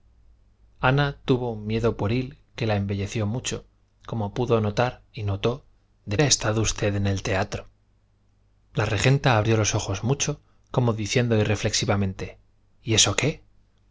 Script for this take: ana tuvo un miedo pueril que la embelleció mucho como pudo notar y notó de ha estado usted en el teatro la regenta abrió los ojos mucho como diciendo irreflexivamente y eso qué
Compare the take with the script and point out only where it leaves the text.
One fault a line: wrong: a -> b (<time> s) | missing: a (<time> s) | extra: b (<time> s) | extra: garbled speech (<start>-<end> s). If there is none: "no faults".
no faults